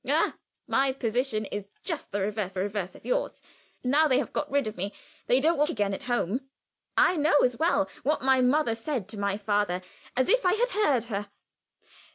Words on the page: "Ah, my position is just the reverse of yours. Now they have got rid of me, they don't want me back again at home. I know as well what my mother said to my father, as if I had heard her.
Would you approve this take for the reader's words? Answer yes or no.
no